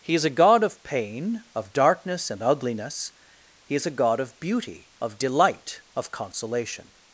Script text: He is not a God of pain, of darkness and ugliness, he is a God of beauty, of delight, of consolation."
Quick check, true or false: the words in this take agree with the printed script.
false